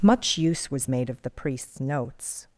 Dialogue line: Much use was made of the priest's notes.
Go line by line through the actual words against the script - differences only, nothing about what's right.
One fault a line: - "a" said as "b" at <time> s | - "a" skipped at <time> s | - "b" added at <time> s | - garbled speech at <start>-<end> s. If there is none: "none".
none